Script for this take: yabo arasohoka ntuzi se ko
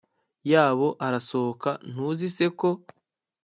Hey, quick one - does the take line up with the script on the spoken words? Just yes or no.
yes